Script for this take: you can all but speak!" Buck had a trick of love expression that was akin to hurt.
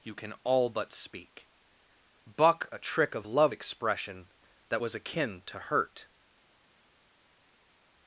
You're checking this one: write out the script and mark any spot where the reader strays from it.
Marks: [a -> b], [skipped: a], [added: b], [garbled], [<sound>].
you can all but speak!" Buck [skipped: had] a trick of love expression that was akin to hurt.